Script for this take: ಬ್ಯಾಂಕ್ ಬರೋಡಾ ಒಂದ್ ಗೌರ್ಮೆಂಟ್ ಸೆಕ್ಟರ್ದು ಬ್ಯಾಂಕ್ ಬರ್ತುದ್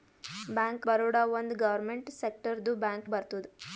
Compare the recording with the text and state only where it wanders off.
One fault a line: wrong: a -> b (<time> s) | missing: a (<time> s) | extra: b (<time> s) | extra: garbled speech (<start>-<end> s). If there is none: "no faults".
no faults